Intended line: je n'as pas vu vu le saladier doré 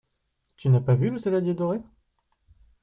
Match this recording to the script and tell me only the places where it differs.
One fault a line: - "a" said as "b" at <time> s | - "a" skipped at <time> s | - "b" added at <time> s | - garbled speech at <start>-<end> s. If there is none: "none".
- "je" said as "tu" at 0.6 s
- "vu" skipped at 1.1 s